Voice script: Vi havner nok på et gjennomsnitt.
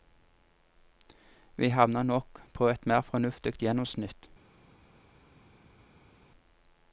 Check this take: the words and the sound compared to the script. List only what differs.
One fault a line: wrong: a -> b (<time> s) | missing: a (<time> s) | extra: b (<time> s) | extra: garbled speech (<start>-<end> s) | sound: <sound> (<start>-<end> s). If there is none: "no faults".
extra: mer fornuftig (2.9 s)